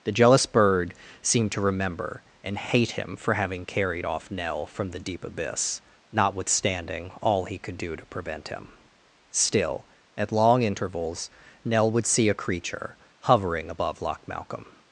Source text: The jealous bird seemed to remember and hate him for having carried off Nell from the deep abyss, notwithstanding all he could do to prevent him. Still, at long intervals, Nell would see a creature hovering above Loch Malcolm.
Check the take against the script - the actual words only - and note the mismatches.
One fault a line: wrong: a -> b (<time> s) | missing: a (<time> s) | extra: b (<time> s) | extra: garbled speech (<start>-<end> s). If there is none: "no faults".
no faults